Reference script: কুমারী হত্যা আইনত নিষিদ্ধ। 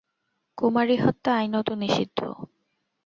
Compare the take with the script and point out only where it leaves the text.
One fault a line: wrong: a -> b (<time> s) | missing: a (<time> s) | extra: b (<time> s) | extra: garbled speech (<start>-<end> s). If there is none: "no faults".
no faults